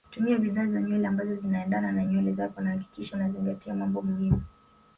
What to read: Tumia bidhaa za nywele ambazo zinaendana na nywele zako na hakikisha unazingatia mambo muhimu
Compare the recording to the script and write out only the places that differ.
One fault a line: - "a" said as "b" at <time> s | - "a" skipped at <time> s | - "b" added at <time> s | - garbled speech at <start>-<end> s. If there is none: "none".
none